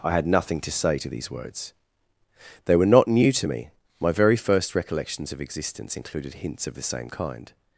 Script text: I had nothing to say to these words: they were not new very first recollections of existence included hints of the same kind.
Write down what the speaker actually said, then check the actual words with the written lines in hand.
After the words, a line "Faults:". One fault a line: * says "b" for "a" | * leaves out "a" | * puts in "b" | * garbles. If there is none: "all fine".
I had nothing to say to these words: they were not new to me: my very first recollections of existence included hints of the same kind.
Faults:
* puts in "to me my"